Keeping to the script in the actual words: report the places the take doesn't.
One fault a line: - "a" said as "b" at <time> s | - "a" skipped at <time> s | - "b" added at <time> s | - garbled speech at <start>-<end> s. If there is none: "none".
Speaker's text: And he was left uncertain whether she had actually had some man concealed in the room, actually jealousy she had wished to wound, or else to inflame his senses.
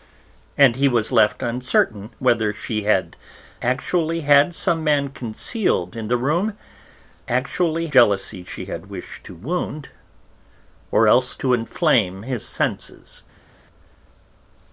none